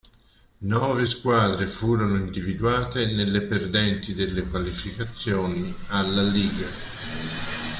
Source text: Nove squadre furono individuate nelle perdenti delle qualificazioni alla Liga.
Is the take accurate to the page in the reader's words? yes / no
yes